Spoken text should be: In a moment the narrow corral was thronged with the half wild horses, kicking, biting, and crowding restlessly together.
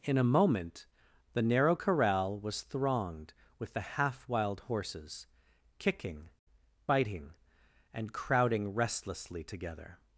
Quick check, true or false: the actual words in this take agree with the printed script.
true